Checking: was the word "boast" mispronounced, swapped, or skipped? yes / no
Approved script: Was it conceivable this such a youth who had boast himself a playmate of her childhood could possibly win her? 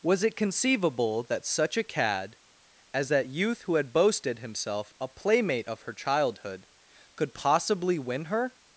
yes